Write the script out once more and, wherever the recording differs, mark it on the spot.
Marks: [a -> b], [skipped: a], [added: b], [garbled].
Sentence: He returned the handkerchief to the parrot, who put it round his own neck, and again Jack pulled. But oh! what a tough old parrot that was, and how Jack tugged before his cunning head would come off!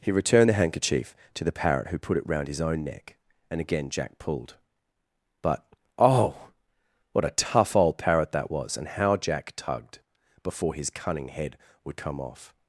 He returned the handkerchief to the parrot, who put it round his own neck, and again Jack pulled. But oh! what a tough old parrot that was, and how Jack tugged before his cunning head would come off!